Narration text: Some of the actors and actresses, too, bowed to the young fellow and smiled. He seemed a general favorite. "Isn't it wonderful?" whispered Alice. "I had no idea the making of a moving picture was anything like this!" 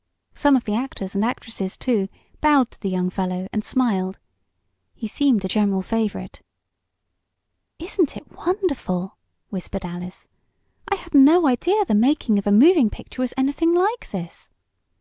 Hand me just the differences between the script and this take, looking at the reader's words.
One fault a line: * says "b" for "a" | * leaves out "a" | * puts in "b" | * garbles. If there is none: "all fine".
all fine